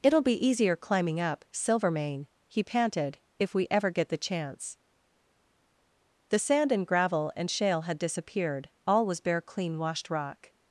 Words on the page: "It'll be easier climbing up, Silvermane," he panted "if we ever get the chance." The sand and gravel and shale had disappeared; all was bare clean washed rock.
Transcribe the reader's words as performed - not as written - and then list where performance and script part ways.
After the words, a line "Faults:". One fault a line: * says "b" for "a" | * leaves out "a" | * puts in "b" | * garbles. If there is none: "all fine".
"It'll be easier climbing up, Silvermane," he panted "if we ever get the chance." The sand and gravel and shale had disappeared; all was bare clean washed rock.
Faults:
all fine